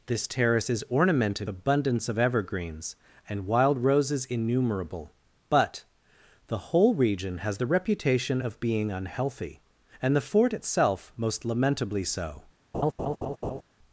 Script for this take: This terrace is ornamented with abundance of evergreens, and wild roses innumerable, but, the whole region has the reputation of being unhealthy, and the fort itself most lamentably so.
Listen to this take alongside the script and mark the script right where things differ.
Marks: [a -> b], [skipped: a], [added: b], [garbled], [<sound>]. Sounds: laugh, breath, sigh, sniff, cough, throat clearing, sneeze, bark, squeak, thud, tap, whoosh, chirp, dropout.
This terrace is ornamented [skipped: with] abundance of evergreens, and wild roses innumerable, but, the whole region has the reputation of being unhealthy, and the fort itself most lamentably so. [laugh]